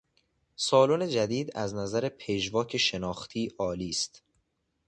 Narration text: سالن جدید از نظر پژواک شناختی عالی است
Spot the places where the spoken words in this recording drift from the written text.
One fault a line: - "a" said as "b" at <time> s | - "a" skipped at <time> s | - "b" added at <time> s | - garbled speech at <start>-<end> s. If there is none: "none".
none